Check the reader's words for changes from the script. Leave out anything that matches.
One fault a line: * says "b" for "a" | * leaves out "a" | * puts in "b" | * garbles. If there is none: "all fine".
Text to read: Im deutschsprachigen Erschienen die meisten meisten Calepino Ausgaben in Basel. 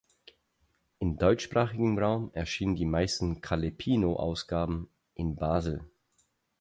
* puts in "Raum"
* leaves out "meisten"